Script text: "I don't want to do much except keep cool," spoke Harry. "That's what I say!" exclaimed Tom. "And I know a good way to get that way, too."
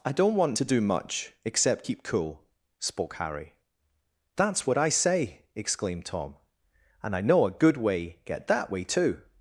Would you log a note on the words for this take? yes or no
yes